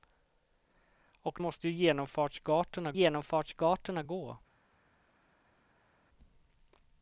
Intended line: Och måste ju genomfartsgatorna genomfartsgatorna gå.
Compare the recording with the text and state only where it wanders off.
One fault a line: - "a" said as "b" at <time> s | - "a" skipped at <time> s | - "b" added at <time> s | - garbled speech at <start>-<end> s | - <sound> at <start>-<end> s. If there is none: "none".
none